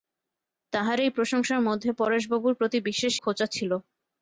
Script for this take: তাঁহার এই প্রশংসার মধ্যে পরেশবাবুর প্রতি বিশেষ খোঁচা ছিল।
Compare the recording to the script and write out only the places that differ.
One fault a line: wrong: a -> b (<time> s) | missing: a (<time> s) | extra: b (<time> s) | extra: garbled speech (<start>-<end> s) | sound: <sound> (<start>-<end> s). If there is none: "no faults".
no faults